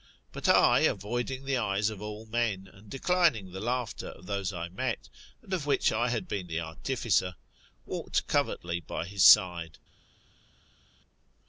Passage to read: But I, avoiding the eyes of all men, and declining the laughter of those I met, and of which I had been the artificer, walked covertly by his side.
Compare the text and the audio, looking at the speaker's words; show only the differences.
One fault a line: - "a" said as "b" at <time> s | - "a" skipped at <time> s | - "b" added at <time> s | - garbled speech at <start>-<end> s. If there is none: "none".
none